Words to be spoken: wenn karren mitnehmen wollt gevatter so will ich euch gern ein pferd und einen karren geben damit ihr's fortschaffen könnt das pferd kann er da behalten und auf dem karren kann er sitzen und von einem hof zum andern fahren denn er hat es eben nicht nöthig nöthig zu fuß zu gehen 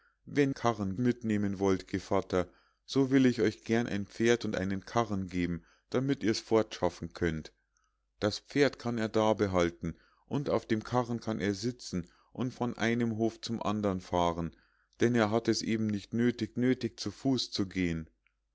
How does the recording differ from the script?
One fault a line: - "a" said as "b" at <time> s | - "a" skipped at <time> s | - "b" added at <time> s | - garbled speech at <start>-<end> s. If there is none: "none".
none